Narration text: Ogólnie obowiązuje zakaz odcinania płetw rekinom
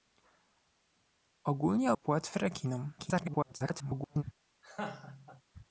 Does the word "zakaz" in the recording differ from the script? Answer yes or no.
yes